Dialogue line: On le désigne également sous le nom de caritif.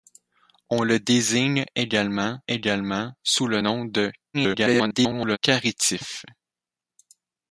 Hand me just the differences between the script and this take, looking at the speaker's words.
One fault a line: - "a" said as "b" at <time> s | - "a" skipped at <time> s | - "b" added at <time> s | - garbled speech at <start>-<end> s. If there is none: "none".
- "également" added at 2.5 s
- garbled speech at 4.3-5.4 s